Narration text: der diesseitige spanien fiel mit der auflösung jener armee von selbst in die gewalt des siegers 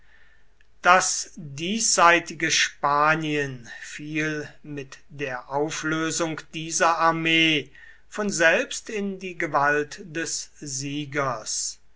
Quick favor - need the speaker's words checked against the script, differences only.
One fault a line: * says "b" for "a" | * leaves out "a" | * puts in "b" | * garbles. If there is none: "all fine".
* says "das" for "der"
* says "dieser" for "jener"